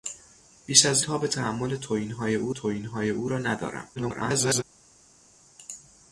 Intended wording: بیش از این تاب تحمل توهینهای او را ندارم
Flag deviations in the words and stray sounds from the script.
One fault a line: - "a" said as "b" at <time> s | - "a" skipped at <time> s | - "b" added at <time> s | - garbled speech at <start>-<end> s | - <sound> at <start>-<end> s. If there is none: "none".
- "این" skipped at 1.0 s
- "توهینهای او" added at 2.5 s
- garbled speech at 4.0-4.6 s